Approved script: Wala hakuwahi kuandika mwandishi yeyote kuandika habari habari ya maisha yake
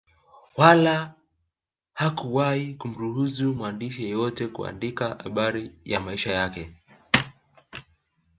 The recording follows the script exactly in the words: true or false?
false